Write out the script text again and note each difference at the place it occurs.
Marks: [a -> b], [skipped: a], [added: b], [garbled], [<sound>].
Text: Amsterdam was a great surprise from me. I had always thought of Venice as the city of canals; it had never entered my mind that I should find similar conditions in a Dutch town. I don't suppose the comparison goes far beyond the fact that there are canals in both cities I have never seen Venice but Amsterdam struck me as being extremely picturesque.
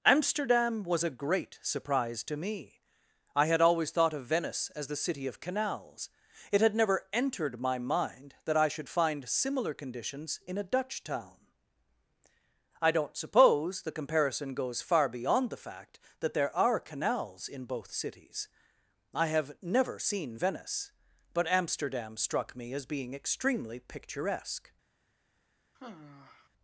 Amsterdam was a great surprise [from -> to] me. I had always thought of Venice as the city of canals; it had never entered my mind that I should find similar conditions in a Dutch town. I don't suppose the comparison goes far beyond the fact that there are canals in both cities I have never seen Venice but Amsterdam struck me as being extremely picturesque. [sigh]